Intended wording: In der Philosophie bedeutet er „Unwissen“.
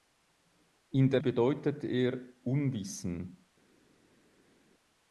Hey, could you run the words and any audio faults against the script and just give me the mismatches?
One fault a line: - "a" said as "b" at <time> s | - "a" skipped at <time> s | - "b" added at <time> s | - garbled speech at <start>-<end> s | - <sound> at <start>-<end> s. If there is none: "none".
- "Philosophie" skipped at 1.2 s